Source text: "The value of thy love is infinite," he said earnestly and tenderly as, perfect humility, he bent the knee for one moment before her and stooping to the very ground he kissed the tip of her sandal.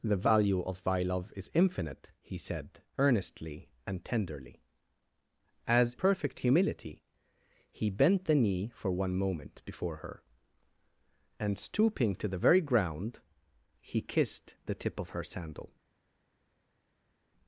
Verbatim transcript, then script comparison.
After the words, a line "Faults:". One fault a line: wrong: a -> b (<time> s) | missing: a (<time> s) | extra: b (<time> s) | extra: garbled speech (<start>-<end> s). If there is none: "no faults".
"The value of thy love is infinite," he said earnestly and tenderly as, perfect humility, he bent the knee for one moment before her and stooping to the very ground he kissed the tip of her sandal.
Faults:
no faults